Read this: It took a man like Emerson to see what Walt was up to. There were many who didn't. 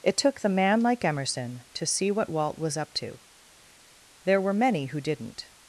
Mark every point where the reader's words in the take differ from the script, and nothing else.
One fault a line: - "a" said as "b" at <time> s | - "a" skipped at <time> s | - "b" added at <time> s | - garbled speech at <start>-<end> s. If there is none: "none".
- "a" said as "the" at 0.4 s